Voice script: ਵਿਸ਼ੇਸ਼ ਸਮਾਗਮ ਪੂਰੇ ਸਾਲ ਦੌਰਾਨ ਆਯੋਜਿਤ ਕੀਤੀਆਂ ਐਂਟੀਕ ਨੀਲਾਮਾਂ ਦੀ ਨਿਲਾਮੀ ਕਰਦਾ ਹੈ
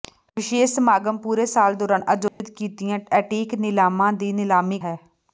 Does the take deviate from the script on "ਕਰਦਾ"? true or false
true